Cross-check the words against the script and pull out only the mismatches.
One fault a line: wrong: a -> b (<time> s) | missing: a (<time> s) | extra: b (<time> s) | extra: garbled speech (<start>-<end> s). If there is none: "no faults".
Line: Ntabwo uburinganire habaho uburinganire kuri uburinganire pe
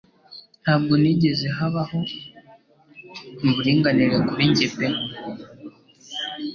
wrong: uburinganire -> nigeze (1.0 s)
wrong: uburinganire -> njye (4.5 s)